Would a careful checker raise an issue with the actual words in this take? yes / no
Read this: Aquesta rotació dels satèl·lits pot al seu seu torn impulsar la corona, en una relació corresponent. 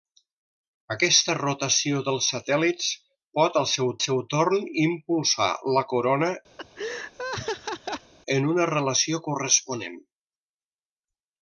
no